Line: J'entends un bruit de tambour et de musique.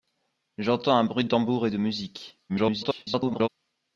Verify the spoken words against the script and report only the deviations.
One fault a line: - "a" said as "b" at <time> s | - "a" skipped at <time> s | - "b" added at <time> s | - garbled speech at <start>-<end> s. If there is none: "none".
- "de" skipped at 1.2 s
- garbled speech at 2.5-3.5 s